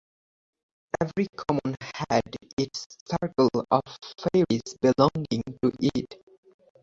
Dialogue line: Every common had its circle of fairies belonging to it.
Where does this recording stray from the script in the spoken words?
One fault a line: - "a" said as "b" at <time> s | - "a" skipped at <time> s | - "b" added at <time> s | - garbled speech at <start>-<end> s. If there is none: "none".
none